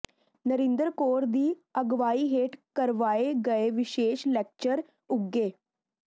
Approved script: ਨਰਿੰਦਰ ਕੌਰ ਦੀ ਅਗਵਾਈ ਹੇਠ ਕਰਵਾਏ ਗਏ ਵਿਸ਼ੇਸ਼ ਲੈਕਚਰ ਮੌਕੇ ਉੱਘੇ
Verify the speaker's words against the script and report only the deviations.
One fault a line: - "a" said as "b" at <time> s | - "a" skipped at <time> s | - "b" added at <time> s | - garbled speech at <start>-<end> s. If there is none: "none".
- "ਮੌਕੇ" skipped at 4.8 s